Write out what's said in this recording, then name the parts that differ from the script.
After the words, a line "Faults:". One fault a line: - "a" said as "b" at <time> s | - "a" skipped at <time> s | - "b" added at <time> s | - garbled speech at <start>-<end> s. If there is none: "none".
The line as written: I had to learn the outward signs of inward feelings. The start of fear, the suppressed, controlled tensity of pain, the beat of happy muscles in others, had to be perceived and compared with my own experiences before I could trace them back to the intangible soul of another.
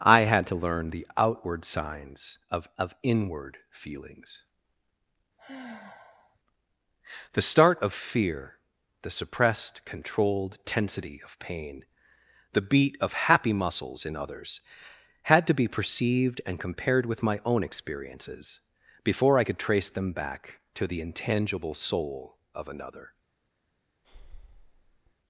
I had to learn the outward signs of of inward feelings. The start of fear, the suppressed, controlled tensity of pain, the beat of happy muscles in others, had to be perceived and compared with my own experiences before I could trace them back to the intangible soul of another.
Faults:
- "of" added at 2.8 s